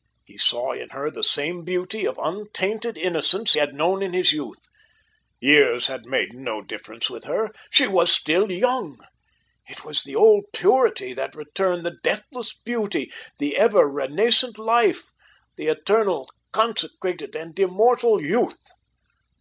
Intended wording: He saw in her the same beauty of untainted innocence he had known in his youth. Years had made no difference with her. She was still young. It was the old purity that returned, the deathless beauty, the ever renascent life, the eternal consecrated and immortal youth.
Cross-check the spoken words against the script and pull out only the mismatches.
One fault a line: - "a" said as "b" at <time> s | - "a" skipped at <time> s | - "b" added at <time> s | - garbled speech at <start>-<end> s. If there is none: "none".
- "he" skipped at 3.5 s